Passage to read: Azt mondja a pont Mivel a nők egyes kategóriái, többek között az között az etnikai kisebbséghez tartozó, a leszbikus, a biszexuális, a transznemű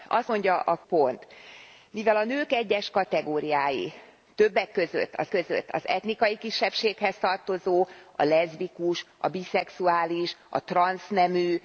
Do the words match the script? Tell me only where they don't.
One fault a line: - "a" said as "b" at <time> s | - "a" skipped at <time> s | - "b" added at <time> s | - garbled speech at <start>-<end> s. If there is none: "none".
none